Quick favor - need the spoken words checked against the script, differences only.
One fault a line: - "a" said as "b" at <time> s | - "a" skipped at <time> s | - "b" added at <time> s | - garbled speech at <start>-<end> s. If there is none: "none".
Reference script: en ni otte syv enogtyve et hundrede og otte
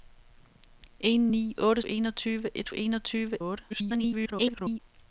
- "syv" skipped at 1.8 s
- "hundrede" said as "enogtyve" at 2.7 s
- garbled speech at 3.7-4.8 s